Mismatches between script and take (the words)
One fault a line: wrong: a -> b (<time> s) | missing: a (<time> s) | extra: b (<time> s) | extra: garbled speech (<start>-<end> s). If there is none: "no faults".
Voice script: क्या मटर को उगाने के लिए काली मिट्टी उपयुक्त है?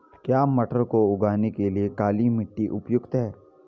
no faults